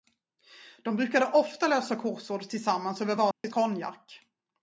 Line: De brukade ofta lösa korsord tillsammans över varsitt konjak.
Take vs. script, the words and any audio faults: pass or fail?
fail